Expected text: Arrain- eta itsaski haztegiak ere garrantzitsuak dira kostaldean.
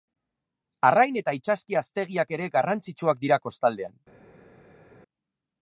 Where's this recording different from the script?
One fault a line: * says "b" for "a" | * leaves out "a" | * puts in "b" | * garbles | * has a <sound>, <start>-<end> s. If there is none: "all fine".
all fine